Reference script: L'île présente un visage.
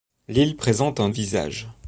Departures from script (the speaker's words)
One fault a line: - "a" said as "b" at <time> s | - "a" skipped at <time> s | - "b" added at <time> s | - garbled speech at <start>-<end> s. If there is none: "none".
none